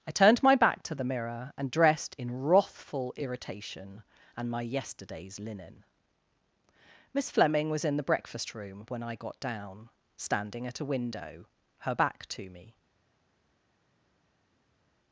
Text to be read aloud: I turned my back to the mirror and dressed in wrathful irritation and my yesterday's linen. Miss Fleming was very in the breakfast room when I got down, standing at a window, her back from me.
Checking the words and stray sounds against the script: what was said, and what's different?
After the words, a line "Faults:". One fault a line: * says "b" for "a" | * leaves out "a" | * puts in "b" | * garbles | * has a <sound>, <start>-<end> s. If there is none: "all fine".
I turned my back to the mirror and dressed in wrathful irritation and my yesterday's linen. Miss Fleming was in the breakfast room when I got down, standing at a window, her back to me.
Faults:
* leaves out "very"
* says "to" for "from"